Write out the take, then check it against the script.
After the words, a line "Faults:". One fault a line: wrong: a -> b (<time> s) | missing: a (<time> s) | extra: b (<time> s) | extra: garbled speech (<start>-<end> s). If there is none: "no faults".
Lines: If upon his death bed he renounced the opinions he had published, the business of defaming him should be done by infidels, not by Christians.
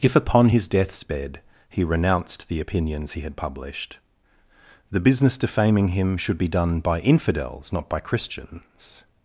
If upon his deaths bed he renounced the opinions he had published, the business defaming him should be done by infidels, not by Christians.
Faults:
wrong: death -> deaths (0.7 s)
missing: of (5.4 s)